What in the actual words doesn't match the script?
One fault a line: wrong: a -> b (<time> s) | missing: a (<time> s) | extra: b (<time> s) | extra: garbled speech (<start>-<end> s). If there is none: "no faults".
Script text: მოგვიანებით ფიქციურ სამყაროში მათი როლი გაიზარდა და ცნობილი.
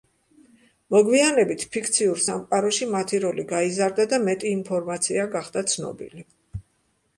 extra: მეტი ინფორმაცია გახდა (4.3 s)